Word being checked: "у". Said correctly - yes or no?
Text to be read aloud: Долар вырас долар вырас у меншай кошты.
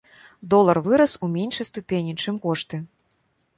no